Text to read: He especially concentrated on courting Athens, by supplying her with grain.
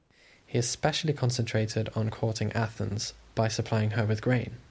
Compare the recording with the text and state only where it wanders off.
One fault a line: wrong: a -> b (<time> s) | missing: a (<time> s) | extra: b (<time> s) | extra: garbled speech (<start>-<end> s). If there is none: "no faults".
no faults